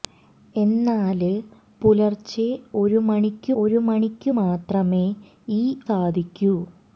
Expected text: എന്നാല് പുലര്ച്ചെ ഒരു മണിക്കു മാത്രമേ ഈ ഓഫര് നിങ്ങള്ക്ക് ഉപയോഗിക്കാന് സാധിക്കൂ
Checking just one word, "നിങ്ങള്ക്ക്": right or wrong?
wrong